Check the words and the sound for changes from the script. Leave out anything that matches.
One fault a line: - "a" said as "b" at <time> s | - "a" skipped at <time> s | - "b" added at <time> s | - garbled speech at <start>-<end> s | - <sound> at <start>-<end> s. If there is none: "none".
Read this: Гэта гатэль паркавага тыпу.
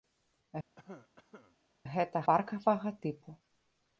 - cough at 0.8-1.6 s
- "гатэль" skipped at 2.2 s